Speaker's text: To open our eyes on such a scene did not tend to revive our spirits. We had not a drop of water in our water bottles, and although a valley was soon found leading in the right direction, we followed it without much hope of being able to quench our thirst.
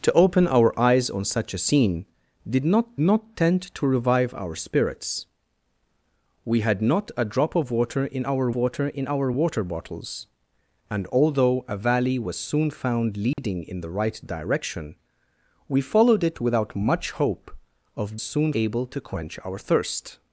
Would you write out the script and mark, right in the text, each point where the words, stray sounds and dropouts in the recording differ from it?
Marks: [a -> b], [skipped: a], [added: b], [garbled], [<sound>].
To open our eyes on such a scene did not [added: not] tend to revive our spirits. We had not a drop of water in our water [added: in our water] bottles, and although a valley was soon found leading [dropout] in the right direction, we followed it without much hope of [being -> soon] able to quench our thirst.